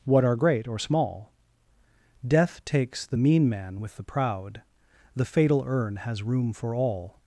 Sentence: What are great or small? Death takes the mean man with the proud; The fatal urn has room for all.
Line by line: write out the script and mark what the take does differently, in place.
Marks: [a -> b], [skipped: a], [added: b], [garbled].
What are great or small? Death takes the mean man with the proud; The fatal urn has room for all.